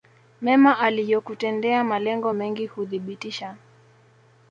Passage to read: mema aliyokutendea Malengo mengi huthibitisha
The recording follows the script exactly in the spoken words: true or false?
true